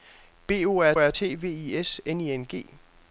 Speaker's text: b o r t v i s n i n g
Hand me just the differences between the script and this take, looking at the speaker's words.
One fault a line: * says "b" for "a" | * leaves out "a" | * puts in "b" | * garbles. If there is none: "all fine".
* puts in "r"